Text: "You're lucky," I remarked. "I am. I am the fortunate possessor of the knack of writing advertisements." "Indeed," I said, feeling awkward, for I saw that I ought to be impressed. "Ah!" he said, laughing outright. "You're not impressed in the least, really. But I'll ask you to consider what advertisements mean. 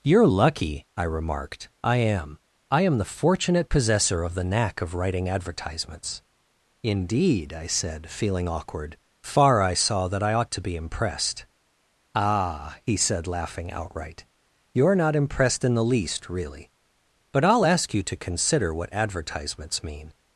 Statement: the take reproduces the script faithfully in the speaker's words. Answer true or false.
false